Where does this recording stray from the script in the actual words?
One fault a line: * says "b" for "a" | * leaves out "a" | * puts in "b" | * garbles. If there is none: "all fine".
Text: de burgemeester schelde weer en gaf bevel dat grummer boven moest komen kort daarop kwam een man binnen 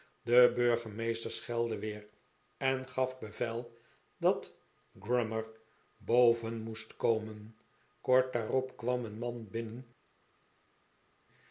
all fine